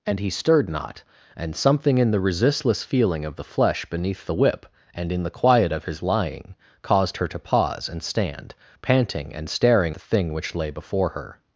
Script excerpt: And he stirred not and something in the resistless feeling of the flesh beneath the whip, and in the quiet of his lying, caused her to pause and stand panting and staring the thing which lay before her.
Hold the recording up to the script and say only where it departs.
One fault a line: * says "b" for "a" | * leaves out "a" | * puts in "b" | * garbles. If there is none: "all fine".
all fine